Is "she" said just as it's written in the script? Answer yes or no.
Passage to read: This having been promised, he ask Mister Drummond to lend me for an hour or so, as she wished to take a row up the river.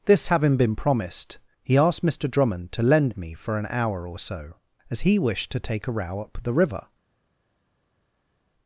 no